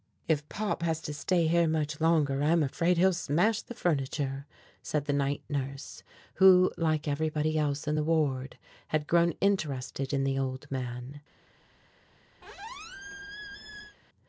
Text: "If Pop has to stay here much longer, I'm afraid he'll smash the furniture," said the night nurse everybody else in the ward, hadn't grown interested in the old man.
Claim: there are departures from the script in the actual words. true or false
true